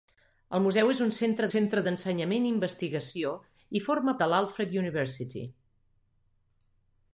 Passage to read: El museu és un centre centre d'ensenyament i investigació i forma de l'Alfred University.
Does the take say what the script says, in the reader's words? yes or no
yes